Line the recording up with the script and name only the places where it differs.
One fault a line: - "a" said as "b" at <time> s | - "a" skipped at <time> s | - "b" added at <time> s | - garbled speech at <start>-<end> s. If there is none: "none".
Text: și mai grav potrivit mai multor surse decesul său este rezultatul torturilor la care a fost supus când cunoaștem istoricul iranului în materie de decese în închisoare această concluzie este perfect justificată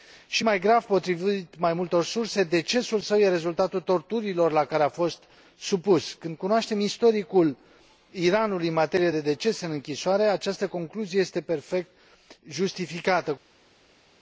none